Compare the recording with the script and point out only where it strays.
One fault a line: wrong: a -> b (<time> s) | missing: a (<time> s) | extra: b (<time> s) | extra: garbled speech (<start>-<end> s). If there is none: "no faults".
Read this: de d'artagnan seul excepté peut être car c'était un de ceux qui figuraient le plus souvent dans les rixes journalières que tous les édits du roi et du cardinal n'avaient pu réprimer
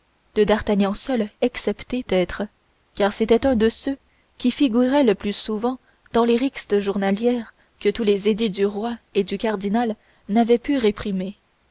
missing: peut (2.0 s)